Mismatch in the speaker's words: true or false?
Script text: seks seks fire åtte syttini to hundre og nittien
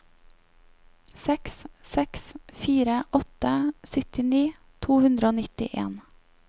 false